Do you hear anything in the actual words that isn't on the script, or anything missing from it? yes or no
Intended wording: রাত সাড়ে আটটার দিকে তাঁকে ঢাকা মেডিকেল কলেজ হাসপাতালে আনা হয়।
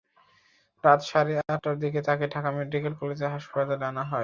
no